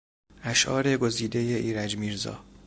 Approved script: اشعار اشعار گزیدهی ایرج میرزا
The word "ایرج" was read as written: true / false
true